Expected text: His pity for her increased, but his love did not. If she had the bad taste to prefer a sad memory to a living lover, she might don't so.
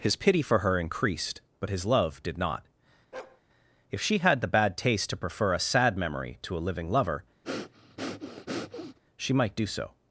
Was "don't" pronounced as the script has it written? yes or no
no